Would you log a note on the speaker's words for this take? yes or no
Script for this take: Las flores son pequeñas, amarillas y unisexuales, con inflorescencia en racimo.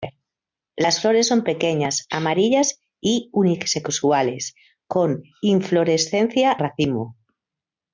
yes